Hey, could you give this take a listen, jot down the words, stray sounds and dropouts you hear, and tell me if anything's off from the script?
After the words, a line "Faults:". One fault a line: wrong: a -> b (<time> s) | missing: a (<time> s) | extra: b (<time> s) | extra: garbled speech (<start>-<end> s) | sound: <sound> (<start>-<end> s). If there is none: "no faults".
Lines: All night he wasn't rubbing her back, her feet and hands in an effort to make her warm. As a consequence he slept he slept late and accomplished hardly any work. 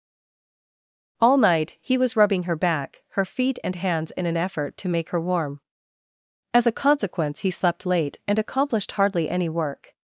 All night he was rubbing her back, her feet and hands in an effort to make her warm. As a consequence he slept late and accomplished hardly any work.
Faults:
wrong: wasn't -> was (2.0 s)
missing: he slept (7.8 s)